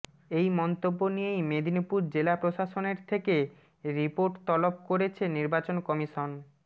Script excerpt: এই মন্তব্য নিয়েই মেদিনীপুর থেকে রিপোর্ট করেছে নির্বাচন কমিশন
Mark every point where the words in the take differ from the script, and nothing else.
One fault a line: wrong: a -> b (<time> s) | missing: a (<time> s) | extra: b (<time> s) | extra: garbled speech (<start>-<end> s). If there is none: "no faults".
extra: জেলা প্রশাসনের (2.1 s)
extra: তলব (4.5 s)